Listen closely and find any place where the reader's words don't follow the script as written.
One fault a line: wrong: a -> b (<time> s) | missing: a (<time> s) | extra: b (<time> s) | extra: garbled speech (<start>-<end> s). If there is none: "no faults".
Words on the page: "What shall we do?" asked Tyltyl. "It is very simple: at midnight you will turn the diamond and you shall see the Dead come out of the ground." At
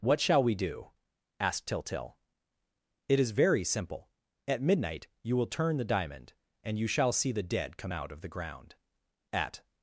no faults